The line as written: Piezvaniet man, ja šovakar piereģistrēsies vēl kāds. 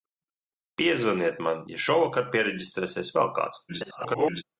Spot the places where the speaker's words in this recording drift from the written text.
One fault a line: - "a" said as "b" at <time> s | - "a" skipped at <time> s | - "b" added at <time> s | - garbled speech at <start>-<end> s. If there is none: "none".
- garbled speech at 3.7-4.4 s